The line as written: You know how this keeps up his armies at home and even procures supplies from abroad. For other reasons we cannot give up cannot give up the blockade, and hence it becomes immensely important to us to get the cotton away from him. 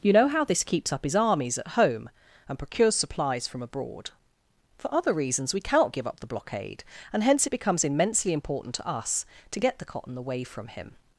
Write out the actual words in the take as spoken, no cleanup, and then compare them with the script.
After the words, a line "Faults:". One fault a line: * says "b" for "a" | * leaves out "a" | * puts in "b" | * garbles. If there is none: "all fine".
You know how this keeps up his armies at home and procures supplies from abroad. For other reasons we cannot give up the blockade, and hence it becomes immensely important to us to get the cotton away from him.
Faults:
* leaves out "even"
* leaves out "cannot give up"